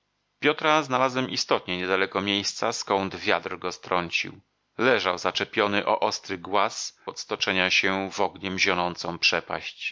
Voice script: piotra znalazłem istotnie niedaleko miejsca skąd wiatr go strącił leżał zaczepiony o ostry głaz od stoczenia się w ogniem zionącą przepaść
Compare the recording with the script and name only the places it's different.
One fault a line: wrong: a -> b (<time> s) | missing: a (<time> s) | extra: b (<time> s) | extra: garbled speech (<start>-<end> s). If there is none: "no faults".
no faults